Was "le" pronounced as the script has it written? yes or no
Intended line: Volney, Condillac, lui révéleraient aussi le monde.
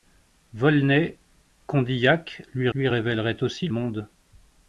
no